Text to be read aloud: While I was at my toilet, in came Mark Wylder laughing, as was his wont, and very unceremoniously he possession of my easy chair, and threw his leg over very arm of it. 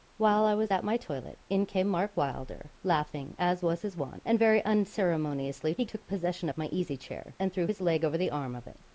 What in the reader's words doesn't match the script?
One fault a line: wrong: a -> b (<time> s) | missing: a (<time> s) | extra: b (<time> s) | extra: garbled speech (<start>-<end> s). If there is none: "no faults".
extra: took (5.8 s)
wrong: very -> the (8.2 s)